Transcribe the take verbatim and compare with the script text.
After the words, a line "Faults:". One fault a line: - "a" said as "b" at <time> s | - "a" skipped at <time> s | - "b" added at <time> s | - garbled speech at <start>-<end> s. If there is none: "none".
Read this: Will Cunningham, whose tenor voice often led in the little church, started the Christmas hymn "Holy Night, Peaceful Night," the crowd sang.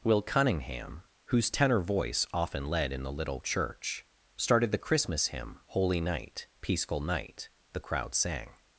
Will Cunningham, whose tenor voice often led in the little church, started the Christmas hymn "Holy Night, Peaceful Night," the crowd sang.
Faults:
none